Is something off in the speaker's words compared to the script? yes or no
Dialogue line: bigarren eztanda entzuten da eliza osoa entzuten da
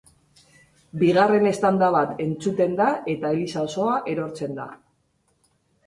yes